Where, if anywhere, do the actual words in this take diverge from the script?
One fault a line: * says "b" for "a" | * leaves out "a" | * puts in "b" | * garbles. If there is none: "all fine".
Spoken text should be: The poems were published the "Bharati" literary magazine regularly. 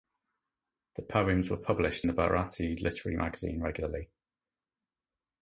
all fine